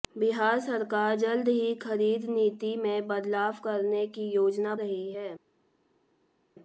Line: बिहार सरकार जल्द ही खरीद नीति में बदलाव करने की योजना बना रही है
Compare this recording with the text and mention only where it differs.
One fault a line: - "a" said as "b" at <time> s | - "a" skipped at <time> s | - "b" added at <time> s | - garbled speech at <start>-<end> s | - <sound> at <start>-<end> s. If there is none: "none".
- "बना" skipped at 4.8 s